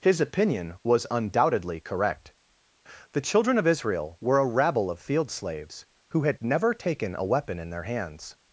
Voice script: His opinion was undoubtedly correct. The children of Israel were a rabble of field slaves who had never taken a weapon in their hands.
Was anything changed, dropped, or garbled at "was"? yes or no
no